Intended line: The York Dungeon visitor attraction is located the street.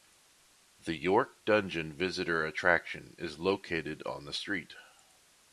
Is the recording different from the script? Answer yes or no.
yes